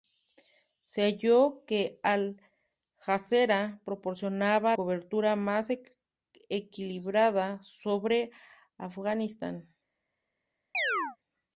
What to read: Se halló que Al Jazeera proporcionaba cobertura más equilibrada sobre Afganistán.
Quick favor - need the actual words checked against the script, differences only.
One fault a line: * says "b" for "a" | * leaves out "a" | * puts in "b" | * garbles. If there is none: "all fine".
all fine